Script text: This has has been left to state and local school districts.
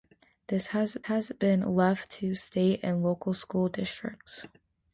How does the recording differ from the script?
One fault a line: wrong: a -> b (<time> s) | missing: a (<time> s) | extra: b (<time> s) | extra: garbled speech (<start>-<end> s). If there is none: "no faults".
no faults